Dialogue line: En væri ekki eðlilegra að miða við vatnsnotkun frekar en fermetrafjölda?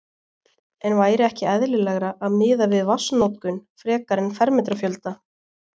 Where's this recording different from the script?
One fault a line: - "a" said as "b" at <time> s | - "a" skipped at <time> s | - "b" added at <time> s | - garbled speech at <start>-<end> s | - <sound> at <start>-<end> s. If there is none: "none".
none